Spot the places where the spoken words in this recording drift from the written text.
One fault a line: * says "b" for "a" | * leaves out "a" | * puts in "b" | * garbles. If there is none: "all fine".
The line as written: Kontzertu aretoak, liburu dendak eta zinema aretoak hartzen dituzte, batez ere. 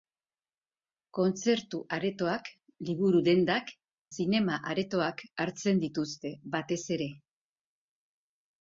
* leaves out "eta"